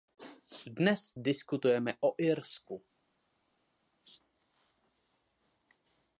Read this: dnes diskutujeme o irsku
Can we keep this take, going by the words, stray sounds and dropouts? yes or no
yes